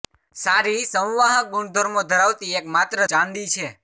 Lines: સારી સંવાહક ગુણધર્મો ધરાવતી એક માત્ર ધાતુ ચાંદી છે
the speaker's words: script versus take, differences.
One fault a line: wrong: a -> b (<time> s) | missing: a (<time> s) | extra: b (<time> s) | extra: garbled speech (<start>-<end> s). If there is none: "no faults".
missing: ધાતુ (3.0 s)